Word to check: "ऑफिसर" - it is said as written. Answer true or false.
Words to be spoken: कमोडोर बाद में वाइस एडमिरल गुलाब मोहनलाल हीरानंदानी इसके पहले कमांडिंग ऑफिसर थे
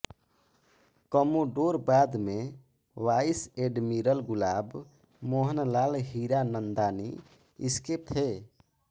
false